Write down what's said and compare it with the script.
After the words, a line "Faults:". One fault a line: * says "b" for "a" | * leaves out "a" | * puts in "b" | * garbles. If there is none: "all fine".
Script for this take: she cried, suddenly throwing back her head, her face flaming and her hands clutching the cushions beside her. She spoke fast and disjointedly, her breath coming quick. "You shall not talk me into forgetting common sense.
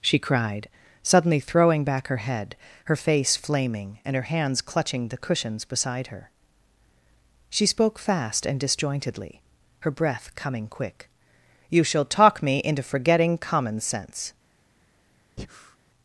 she cried, suddenly throwing back her head, her face flaming and her hands clutching the cushions beside her. She spoke fast and disjointedly, her breath coming quick. "You shall talk me into forgetting common sense.
Faults:
* leaves out "not"